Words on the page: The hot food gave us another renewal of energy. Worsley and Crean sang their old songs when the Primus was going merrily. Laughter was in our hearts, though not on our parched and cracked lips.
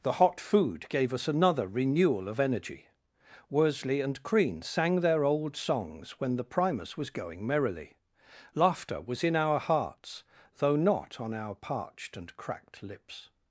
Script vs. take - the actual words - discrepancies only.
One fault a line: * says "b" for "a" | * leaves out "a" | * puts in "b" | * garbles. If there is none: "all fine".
all fine